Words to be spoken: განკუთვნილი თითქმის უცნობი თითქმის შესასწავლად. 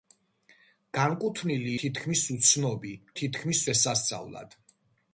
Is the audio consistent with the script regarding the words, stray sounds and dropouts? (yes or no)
yes